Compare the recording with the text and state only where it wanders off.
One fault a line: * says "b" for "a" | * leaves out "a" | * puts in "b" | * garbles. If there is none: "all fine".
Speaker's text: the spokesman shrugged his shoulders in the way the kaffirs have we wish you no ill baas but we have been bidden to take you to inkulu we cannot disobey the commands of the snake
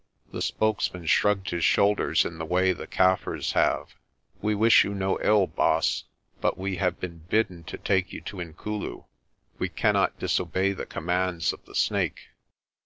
all fine